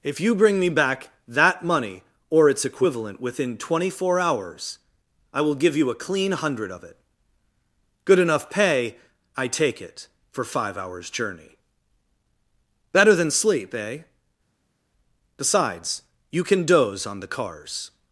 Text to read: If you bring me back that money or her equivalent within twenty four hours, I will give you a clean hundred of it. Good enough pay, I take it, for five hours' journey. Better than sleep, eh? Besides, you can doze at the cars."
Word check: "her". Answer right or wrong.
wrong